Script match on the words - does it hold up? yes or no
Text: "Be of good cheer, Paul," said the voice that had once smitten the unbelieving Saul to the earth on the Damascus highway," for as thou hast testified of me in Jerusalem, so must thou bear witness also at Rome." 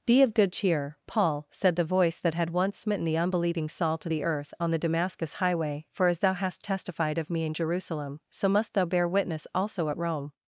yes